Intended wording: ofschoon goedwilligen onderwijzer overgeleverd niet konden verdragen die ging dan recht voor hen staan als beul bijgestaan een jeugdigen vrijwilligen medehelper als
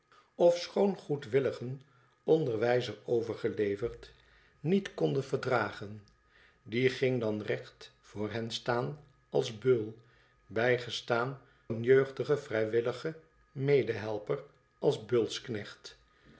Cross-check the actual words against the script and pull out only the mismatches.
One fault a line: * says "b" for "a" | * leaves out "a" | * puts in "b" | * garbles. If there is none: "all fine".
all fine